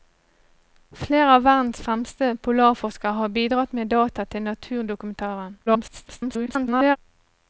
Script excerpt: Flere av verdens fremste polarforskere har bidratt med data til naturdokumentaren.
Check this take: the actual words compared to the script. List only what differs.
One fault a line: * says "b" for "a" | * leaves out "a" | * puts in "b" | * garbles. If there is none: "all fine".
* garbles